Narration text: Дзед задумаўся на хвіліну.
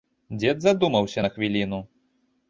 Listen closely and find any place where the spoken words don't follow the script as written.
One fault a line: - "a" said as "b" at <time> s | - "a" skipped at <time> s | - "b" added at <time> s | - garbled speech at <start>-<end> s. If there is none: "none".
none